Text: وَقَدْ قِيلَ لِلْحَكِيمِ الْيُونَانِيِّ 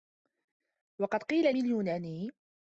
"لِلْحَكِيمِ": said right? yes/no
no